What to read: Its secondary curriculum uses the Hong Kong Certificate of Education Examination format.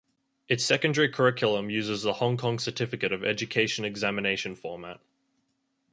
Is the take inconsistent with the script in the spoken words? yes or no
no